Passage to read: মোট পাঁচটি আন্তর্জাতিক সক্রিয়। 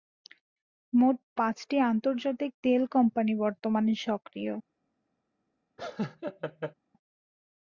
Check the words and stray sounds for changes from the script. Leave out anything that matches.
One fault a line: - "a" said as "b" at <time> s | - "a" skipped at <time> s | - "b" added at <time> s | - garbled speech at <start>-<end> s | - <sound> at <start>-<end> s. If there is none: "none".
- "তেল কোম্পানি বর্তমানে" added at 2.6 s
- laugh at 5.8-6.7 s